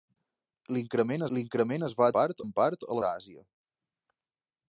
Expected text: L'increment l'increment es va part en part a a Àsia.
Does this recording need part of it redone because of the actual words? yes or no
no